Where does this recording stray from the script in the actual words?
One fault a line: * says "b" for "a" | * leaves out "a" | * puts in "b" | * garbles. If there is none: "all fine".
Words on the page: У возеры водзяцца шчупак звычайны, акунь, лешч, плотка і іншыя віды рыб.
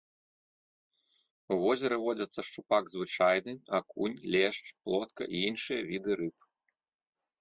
all fine